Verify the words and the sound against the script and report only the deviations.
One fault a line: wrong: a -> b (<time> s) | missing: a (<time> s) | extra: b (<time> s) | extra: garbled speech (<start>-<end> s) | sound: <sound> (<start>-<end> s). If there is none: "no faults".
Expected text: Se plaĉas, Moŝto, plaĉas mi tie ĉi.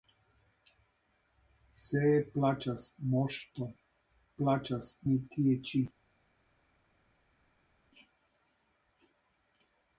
no faults